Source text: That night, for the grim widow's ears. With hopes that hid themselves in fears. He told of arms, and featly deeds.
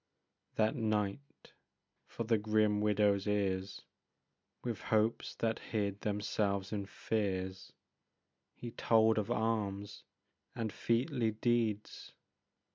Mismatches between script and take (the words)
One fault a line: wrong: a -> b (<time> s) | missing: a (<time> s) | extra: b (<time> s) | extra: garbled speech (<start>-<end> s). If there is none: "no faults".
no faults